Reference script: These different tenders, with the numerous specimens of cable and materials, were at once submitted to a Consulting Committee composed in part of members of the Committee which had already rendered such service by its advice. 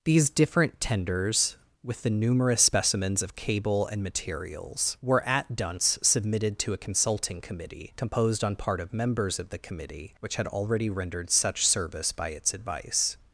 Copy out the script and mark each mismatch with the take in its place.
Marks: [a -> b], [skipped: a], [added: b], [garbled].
These different tenders, with the numerous specimens of cable and materials, were at [once -> dunce] submitted to a Consulting Committee composed [in -> on] part of members of the Committee which had already rendered such service by its advice.